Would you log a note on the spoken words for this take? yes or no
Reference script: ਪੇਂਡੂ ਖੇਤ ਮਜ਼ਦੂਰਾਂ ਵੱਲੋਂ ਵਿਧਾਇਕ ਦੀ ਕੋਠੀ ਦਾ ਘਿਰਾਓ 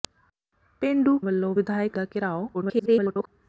yes